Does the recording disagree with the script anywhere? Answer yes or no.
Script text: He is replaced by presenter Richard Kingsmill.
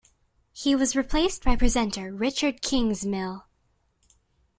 yes